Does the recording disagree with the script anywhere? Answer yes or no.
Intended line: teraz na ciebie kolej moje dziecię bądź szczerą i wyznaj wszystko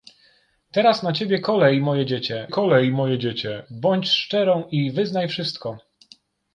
yes